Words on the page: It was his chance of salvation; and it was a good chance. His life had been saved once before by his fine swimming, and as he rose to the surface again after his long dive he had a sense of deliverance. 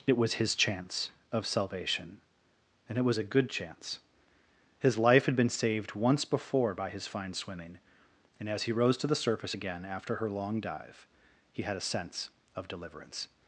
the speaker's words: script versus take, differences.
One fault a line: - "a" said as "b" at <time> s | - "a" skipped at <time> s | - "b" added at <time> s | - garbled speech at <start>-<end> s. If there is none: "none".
- "his" said as "her" at 10.2 s